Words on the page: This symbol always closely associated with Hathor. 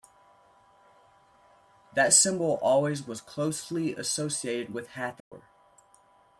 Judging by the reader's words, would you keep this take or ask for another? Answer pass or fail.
fail